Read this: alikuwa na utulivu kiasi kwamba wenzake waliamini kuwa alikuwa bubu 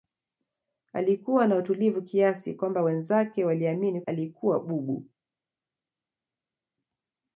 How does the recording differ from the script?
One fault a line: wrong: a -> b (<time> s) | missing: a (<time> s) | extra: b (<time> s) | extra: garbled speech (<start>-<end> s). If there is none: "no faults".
missing: kuwa (4.0 s)